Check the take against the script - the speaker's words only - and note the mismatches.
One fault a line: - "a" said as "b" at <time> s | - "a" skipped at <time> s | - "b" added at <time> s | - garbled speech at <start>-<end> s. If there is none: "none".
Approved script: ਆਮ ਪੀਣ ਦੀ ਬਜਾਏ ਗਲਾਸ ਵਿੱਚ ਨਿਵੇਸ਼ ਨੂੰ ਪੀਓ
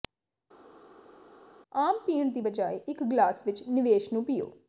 - "ਇੱਕ" added at 2.9 s